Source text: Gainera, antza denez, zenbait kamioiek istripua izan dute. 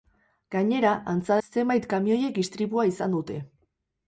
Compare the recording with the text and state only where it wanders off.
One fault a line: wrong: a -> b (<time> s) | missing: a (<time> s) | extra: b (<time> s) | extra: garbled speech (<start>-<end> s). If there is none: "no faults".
missing: denez (1.4 s)